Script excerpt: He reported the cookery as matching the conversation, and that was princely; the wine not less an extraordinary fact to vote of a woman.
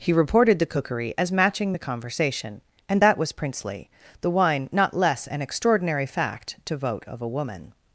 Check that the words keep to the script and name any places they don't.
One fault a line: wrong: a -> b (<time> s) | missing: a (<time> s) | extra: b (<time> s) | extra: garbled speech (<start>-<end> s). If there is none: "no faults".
no faults